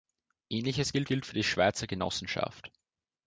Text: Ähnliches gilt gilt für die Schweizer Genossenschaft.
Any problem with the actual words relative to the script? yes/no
no